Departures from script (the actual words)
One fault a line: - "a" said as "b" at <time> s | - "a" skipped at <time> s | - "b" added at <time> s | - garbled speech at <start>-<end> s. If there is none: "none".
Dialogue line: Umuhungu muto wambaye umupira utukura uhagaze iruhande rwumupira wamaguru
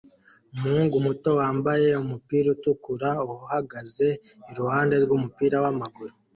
none